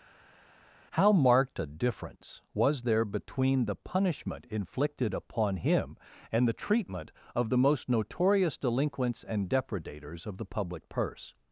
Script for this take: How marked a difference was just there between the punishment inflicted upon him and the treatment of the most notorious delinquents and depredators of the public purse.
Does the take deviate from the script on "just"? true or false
true